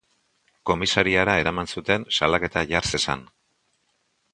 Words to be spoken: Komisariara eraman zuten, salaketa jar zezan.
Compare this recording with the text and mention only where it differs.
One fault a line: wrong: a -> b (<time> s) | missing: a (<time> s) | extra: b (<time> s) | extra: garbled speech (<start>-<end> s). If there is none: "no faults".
no faults